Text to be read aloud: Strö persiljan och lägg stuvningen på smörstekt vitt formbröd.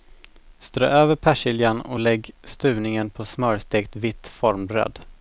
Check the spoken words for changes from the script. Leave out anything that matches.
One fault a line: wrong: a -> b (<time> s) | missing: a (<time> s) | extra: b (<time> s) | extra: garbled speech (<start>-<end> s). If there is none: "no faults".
extra: över (0.9 s)